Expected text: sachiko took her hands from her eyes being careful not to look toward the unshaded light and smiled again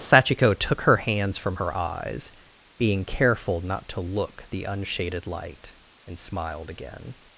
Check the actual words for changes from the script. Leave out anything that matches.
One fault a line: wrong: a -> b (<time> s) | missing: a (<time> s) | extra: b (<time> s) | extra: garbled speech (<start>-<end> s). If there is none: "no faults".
missing: toward (4.4 s)